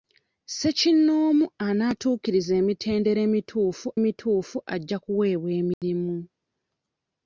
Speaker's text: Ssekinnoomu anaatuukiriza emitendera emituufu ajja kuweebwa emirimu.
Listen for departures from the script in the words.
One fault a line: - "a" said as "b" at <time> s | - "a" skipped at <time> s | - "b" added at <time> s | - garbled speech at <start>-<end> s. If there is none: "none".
- "emituufu" added at 4.0 s